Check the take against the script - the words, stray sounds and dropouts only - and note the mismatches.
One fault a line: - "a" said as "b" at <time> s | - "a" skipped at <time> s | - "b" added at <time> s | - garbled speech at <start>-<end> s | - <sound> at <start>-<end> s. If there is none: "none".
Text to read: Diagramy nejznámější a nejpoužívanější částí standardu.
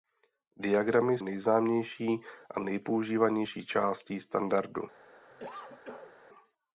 - cough at 5.3-6.2 s